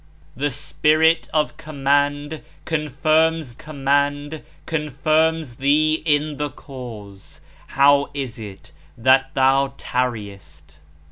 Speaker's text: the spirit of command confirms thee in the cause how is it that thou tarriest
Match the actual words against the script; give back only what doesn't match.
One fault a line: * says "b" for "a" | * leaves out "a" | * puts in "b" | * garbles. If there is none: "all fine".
* puts in "command confirms"